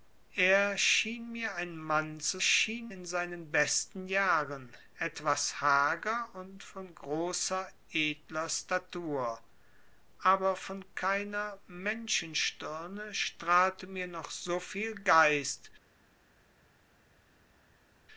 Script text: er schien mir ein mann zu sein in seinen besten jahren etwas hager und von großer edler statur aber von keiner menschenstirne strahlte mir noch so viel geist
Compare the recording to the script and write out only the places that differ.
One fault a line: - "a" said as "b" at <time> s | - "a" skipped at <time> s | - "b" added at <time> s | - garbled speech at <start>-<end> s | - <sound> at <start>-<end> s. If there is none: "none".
- "sein" said as "schien" at 2.4 s